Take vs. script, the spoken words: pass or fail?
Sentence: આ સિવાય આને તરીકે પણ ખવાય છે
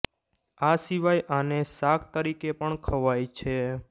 fail